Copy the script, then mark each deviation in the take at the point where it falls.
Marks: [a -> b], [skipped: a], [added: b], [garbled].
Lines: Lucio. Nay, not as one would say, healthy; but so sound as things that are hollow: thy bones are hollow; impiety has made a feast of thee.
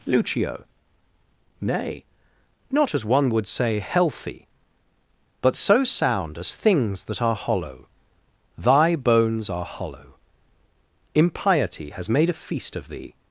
Lucio. Nay, not as one would say, healthy; but so sound as things that are hollow: thy bones are hollow; impiety has made a feast of thee.